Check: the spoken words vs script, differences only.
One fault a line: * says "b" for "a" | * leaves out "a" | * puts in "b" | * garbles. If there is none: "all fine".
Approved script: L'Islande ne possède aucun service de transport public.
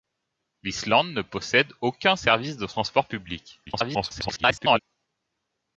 * garbles